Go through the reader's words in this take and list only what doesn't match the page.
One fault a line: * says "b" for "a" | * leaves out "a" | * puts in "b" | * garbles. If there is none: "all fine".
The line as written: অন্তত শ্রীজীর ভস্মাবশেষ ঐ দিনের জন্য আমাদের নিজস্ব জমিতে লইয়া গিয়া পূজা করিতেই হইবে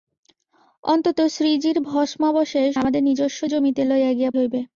* leaves out "ঐ দিনের জন্য"
* leaves out "পূজা করিতেই"